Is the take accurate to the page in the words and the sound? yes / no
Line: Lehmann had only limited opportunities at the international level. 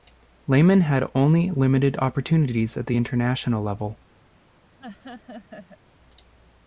no